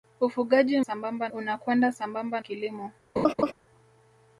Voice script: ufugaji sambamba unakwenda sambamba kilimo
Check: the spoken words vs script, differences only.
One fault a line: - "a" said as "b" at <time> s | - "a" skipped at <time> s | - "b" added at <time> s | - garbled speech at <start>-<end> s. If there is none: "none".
none